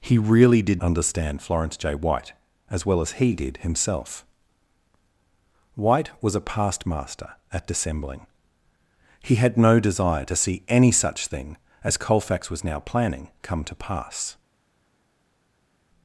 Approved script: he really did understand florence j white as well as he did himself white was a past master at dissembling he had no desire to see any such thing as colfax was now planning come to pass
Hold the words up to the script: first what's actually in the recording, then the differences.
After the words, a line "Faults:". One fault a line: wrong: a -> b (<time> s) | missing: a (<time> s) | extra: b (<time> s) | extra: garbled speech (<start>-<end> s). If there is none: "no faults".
he really did understand florence j white as well as he did himself white was a past master at dissembling he had no desire to see any such thing as colfax was now planning come to pass
Faults:
no faults